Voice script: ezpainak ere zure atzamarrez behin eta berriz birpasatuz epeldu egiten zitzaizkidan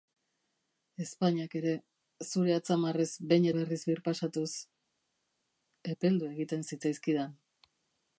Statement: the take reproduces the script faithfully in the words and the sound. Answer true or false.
false